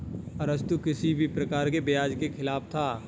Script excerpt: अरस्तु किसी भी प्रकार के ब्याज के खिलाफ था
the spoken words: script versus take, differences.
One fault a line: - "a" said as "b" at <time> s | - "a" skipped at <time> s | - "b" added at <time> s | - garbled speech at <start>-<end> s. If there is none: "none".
none